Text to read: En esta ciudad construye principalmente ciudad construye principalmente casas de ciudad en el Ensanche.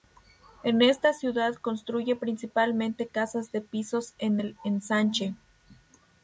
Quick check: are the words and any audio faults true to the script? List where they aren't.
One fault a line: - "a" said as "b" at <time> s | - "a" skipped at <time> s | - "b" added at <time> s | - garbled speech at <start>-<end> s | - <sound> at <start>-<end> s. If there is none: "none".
- "ciudad construye principalmente" skipped at 3.0 s
- "ciudad" said as "pisos" at 3.6 s